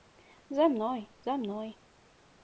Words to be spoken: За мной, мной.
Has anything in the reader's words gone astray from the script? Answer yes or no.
yes